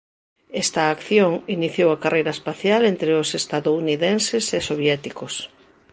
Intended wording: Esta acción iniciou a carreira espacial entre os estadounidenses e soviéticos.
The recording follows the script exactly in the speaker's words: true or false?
true